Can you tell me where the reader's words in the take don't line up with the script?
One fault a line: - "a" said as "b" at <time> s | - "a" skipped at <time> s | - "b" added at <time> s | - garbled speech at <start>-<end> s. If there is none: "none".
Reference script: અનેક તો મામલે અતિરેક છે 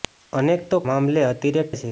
none